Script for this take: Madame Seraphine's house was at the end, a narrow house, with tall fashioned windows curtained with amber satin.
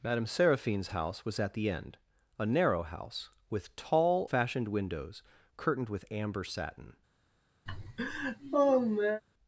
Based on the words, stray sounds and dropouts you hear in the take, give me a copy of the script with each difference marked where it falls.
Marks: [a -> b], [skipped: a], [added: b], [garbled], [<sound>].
Madame Seraphine's house was at the end, a narrow house, with tall fashioned windows curtained with amber satin. [laugh]